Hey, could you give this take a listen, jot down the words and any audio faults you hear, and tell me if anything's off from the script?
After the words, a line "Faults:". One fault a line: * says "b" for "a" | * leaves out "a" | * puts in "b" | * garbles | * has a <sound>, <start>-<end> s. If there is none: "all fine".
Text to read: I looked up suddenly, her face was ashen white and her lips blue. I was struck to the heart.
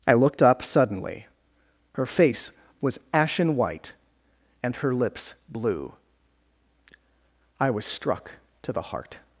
I looked up suddenly, her face was ashen white and her lips blue. I was struck to the heart.
Faults:
all fine